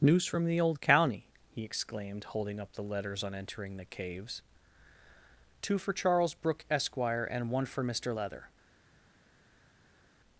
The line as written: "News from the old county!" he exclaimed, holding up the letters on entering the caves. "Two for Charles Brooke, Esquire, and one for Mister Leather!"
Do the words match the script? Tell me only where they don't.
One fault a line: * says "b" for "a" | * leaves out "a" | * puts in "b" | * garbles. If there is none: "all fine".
all fine